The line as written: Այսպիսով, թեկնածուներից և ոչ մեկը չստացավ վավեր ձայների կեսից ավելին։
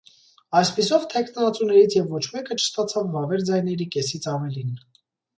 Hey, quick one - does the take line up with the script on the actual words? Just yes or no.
yes